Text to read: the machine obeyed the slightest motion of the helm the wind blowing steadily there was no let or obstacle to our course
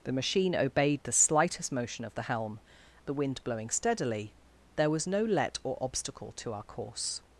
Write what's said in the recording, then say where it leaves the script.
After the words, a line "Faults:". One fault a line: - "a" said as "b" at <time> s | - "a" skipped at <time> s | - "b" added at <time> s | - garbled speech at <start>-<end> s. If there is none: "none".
the machine obeyed the slightest motion of the helm the wind blowing steadily there was no let or obstacle to our course
Faults:
none